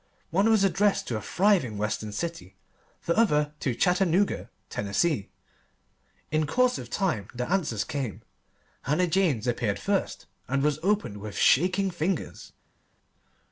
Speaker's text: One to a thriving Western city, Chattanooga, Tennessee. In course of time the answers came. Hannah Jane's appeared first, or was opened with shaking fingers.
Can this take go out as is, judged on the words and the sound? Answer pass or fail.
fail